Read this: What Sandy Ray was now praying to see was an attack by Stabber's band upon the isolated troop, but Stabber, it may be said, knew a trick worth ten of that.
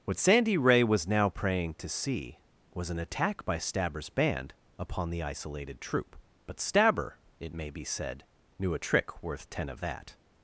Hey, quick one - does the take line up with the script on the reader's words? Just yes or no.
yes